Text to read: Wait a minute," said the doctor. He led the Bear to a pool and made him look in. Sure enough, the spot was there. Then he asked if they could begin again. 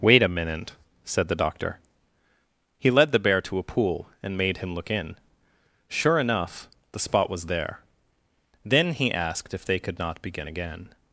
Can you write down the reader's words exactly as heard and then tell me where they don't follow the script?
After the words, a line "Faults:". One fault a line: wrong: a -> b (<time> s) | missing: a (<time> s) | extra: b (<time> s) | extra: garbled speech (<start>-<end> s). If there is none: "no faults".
Wait a minute," said the doctor. He led the Bear to a pool and made him look in. Sure enough, the spot was there. Then he asked if they could not begin again.
Faults:
extra: not (10.0 s)